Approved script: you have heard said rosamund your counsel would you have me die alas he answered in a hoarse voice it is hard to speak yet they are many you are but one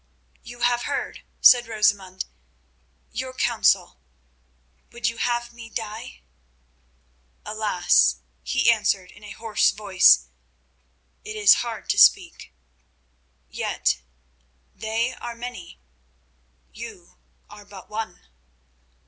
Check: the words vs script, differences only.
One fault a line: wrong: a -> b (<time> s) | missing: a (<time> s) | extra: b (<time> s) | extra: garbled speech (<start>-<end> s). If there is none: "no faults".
no faults